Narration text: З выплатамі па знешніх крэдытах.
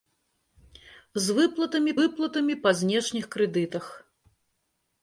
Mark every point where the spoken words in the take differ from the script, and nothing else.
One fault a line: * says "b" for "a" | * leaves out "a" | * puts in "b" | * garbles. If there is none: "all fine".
* puts in "выплатамі"